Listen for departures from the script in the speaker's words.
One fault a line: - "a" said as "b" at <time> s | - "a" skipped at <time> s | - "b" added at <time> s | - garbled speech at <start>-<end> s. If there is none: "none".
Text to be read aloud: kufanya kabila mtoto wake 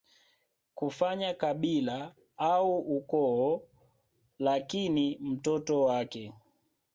- "au ukoo Lakini" added at 2.4 s